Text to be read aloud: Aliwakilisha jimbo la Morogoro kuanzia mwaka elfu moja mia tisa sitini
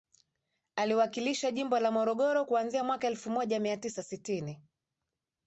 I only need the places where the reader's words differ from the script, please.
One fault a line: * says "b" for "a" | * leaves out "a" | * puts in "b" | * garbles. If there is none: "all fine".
all fine